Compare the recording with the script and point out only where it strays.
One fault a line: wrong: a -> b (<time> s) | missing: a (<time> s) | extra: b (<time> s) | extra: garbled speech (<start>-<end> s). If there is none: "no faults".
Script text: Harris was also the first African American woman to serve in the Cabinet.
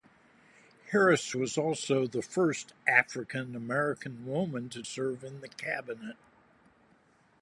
no faults